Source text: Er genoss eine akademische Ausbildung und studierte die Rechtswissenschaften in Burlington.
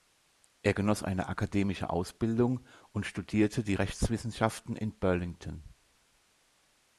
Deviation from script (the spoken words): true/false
false